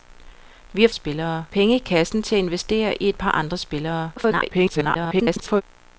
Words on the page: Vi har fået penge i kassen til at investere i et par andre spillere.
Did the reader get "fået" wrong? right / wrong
wrong